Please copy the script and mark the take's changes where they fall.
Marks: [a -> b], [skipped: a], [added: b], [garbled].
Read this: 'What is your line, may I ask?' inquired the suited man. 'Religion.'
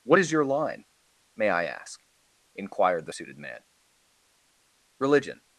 'What is your line, may I ask?' inquired the suited man. 'Religion.'